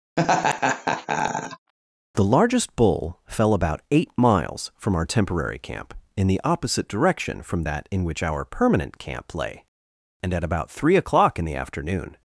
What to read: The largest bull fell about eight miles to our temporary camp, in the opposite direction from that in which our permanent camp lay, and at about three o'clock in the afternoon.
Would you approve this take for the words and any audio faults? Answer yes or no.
no